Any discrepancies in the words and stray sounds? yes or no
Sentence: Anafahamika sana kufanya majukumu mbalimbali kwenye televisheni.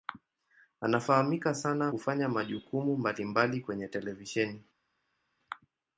no